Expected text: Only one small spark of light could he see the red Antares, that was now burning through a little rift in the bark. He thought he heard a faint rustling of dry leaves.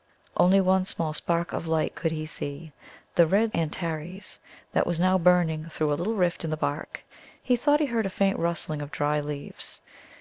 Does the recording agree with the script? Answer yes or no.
yes